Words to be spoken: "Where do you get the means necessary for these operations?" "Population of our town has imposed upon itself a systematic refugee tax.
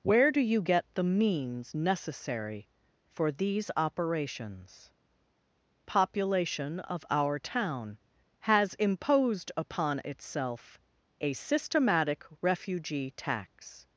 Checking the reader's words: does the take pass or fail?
pass